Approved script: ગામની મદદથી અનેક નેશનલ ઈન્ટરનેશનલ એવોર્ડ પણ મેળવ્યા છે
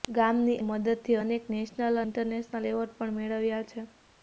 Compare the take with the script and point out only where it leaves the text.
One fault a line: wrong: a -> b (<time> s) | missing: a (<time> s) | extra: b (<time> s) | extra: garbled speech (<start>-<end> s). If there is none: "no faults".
no faults